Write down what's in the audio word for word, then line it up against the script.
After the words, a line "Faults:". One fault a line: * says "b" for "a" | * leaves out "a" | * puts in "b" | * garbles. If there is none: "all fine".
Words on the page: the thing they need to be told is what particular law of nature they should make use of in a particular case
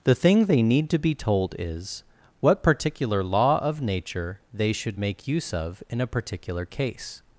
the thing they need to be told is what particular law of nature they should make use of in a particular case
Faults:
all fine